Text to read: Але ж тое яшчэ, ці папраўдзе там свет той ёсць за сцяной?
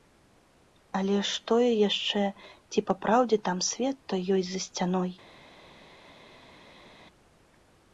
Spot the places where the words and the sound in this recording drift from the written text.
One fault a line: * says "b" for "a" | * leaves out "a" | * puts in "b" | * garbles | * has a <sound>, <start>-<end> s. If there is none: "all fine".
all fine